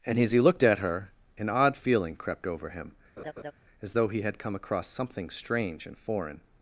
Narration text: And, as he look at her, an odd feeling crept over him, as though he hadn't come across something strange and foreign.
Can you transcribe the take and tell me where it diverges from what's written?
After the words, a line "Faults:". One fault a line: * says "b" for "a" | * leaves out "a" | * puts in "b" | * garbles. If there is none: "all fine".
And, as he looked at her, an odd feeling crept over him, as though he had come across something strange and foreign.
Faults:
* says "looked" for "look"
* says "had" for "hadn't"